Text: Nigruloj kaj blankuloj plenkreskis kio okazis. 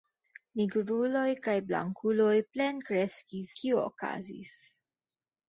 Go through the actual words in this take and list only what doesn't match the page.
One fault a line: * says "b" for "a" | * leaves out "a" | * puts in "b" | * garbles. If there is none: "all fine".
all fine